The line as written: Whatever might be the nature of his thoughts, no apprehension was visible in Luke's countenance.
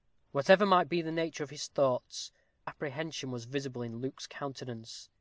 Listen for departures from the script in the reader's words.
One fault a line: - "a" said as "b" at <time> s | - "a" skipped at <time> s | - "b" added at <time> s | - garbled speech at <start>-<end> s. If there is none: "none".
- "no" skipped at 2.3 s